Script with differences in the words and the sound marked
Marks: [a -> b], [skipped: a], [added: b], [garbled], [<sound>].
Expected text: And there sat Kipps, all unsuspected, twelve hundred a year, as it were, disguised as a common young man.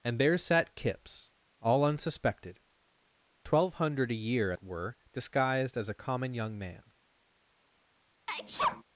And there sat Kipps, all unsuspected, twelve hundred a year, [skipped: as] it were, disguised as a common young man. [sneeze]